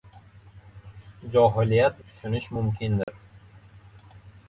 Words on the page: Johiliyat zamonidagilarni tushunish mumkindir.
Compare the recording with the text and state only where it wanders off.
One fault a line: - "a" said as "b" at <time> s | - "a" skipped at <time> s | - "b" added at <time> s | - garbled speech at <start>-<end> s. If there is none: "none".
- "zamonidagilarni" skipped at 2.0 s